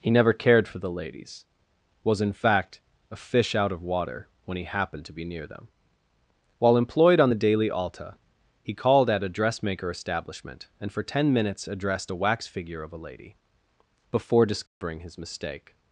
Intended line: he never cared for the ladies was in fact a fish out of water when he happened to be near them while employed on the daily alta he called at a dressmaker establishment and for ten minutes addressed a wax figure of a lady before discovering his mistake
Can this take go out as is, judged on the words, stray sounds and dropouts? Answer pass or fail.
fail